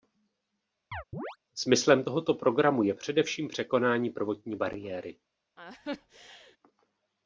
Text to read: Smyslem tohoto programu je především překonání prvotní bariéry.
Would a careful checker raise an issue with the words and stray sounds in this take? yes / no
yes